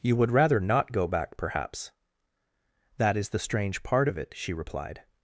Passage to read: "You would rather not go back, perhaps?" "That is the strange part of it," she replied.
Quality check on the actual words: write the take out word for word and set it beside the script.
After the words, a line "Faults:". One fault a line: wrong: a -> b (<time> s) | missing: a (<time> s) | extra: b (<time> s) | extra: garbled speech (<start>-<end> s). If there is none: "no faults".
"You would rather not go back, perhaps?" "That is the strange part of it," she replied.
Faults:
no faults